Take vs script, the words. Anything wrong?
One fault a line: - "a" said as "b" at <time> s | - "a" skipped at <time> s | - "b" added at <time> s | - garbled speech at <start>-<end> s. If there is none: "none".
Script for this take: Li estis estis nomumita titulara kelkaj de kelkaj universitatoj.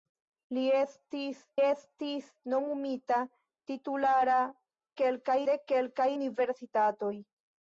none